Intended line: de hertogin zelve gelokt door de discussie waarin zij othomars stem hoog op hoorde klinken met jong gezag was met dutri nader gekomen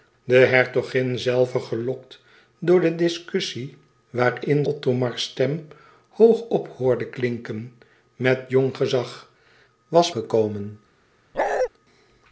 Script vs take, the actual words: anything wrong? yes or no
yes